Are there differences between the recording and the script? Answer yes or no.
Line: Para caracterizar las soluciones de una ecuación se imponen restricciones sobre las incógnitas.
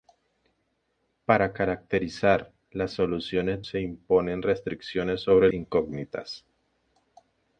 yes